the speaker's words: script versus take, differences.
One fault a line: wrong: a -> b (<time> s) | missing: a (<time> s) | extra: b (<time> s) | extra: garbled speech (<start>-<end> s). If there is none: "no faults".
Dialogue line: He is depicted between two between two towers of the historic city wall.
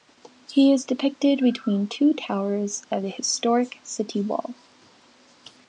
missing: between two (2.1 s)